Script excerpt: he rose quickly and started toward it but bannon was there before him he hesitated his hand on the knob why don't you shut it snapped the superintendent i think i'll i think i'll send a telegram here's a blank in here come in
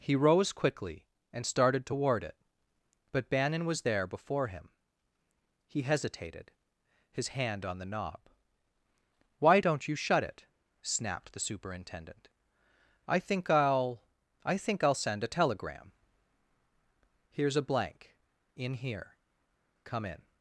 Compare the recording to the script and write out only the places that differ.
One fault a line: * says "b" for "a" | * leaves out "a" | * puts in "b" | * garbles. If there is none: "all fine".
all fine